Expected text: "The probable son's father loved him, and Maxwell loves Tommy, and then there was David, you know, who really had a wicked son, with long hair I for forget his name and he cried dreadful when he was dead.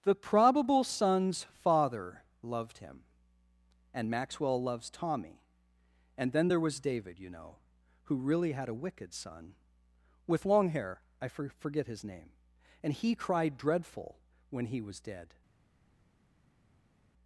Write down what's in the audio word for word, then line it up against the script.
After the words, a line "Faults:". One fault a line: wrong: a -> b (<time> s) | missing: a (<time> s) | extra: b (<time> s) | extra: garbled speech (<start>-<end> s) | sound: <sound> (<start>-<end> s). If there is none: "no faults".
"The probable son's father loved him, and Maxwell loves Tommy, and then there was David, you know, who really had a wicked son, with long hair I for forget his name and he cried dreadful when he was dead.
Faults:
no faults